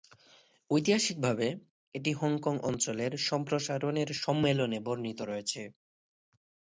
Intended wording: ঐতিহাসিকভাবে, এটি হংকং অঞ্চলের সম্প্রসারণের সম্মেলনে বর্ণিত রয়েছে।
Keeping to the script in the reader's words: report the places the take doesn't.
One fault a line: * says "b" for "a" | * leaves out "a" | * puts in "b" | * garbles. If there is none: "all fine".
all fine